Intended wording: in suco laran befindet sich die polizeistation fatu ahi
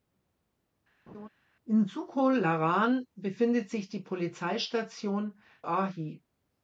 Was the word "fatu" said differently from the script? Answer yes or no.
yes